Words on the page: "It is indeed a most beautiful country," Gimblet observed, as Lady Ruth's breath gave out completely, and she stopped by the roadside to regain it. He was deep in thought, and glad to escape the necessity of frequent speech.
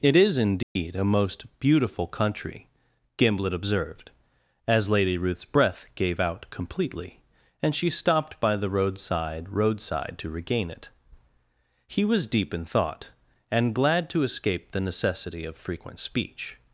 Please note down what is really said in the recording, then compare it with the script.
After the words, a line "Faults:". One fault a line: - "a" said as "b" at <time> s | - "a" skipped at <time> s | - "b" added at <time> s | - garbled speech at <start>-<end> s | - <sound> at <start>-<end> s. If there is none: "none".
"It is indeed a most beautiful country," Gimblet observed, as Lady Ruth's breath gave out completely, and she stopped by the roadside roadside to regain it. He was deep in thought, and glad to escape the necessity of frequent speech.
Faults:
- dropout at 0.6-0.8 s
- "roadside" added at 9.5 s